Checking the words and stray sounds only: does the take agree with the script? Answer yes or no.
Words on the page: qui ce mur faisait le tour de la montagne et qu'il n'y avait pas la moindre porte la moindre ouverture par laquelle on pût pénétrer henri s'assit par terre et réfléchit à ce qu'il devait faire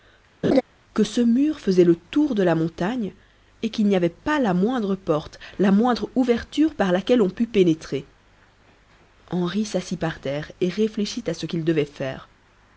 no